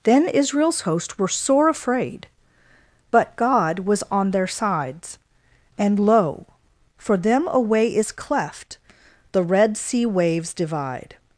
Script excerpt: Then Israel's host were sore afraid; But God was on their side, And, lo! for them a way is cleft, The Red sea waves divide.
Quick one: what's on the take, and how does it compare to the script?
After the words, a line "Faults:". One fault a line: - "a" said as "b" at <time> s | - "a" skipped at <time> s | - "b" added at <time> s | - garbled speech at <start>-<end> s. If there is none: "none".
Then Israel's host were sore afraid; But God was on their sides, And, lo! for them a way is cleft, The Red sea waves divide.
Faults:
- "side" said as "sides" at 4.5 s